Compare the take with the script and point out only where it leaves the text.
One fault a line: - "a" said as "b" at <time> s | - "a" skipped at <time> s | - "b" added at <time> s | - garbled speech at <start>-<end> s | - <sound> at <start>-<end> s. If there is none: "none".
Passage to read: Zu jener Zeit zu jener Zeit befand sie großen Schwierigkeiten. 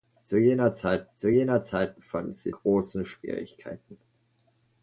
none